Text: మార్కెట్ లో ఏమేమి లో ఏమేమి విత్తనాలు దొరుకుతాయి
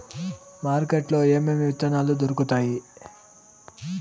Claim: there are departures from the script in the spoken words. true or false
true